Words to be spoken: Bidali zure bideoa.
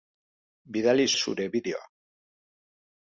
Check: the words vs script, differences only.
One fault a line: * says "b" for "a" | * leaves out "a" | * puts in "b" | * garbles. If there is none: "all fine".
all fine